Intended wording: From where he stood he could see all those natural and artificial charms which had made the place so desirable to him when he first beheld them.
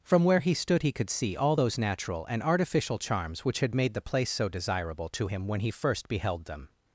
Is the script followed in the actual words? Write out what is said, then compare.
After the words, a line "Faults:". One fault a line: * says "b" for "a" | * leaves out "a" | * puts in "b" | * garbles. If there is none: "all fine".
From where he stood he could see all those natural and artificial charms which had made the place so desirable to him when he first beheld them.
Faults:
all fine